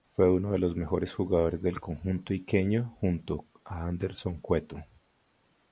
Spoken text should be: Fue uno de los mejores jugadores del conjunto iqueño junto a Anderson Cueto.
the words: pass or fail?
pass